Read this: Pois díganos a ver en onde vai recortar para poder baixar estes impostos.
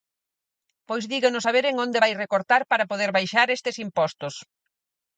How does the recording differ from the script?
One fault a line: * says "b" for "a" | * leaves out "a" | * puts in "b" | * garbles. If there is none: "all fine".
all fine